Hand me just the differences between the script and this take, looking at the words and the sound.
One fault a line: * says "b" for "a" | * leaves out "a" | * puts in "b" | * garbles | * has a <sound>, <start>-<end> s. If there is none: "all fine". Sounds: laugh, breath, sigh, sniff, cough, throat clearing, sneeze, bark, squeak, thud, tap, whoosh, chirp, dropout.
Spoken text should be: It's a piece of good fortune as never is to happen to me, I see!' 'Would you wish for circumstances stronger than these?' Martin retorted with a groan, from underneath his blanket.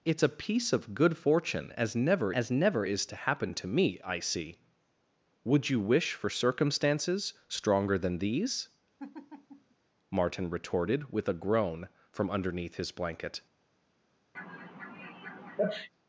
* puts in "as never"
* has a laugh, 9.0-9.7 s
* has a sneeze, 14.3-15.9 s